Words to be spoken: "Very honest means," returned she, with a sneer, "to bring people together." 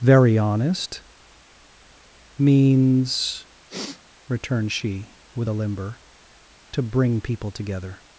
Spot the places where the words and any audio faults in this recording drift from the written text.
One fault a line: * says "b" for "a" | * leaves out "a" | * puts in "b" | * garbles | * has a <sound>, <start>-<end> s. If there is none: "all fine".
* has a sniff, 3.7-4.0 s
* says "limber" for "sneer"